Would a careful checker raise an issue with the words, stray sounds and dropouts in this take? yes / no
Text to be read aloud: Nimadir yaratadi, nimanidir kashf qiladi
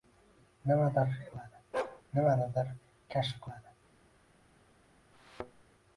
yes